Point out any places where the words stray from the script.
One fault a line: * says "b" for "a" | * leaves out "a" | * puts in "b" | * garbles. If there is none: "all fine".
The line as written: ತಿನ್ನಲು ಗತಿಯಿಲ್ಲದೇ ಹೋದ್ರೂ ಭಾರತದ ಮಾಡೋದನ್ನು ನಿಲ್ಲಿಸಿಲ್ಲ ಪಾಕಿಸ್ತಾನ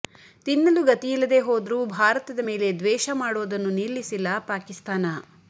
* puts in "ಮೇಲೆ ದ್ವೇಷ"